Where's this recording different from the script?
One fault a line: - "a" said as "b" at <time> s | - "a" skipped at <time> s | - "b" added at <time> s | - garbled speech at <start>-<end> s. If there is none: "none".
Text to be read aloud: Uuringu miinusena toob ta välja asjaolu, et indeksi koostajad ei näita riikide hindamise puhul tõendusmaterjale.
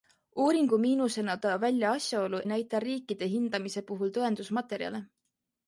- "toob" skipped at 1.4 s
- "et indeksi koostajad" skipped at 2.4 s